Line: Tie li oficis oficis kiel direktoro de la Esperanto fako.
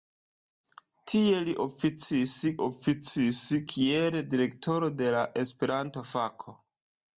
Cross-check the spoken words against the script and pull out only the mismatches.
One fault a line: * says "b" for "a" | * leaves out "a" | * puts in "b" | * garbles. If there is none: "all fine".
all fine